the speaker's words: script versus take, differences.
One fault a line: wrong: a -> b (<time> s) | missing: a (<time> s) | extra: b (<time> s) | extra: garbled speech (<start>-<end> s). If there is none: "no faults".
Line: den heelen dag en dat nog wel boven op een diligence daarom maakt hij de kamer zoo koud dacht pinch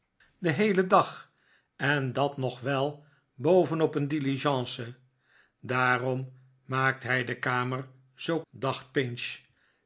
missing: koud (8.4 s)